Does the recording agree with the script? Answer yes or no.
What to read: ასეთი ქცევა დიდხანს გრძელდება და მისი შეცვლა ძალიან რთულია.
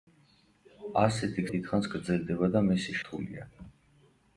no